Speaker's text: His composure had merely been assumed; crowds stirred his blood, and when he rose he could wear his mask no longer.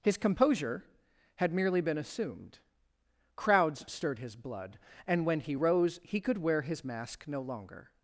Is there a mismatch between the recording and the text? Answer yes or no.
no